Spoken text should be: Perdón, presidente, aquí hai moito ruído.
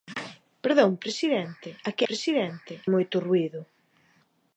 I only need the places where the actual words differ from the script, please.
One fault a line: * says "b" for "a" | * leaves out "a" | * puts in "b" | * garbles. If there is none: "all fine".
* says "presidente" for "hai"